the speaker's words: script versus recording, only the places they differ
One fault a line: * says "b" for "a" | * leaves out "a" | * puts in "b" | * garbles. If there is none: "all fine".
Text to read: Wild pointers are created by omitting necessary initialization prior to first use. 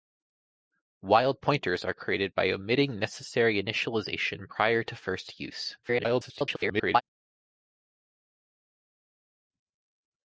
* garbles